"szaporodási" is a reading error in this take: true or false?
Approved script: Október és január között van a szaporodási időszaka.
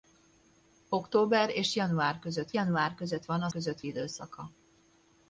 true